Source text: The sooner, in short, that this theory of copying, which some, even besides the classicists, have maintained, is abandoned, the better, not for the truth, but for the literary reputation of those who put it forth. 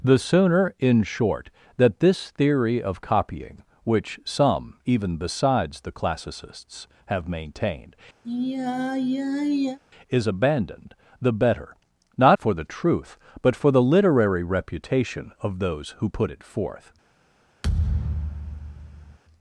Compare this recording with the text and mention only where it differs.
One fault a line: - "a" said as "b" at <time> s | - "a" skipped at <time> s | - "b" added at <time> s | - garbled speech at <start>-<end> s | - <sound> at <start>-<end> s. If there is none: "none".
- sigh at 8.2-9.8 s
- thud at 17.6-19.2 s